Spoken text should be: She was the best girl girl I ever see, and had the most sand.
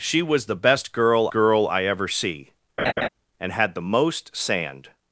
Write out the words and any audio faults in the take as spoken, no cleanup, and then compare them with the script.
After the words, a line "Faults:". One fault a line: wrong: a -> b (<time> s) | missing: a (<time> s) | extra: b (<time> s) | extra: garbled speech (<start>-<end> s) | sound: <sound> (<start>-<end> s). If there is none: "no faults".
She was the best girl girl I ever see, and had the most sand.
Faults:
sound: laugh (2.8-3.1 s)